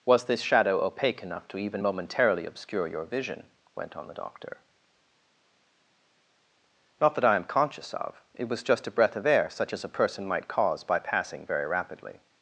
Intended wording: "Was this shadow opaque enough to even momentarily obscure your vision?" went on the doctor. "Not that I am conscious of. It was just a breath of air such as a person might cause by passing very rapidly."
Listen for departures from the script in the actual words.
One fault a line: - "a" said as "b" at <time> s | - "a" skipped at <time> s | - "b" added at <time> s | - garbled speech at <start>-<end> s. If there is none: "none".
none